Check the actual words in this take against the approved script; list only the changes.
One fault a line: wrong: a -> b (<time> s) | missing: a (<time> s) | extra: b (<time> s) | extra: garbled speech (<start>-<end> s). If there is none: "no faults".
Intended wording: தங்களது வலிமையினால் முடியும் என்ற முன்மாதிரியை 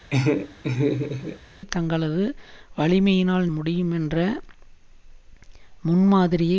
no faults